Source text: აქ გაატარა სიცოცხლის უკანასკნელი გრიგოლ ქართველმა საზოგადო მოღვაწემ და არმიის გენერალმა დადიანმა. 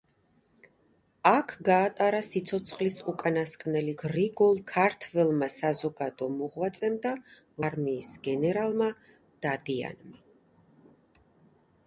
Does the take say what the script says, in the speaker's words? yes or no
yes